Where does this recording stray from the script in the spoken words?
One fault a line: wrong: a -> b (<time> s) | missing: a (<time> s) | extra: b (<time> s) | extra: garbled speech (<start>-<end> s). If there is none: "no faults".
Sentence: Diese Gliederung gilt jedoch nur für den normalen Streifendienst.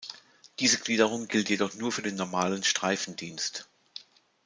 no faults